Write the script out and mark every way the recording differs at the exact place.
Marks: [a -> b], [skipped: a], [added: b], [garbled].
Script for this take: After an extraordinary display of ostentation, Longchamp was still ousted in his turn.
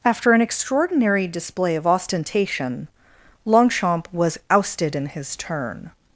After an extraordinary display of ostentation, Longchamp was [skipped: still] ousted in his turn.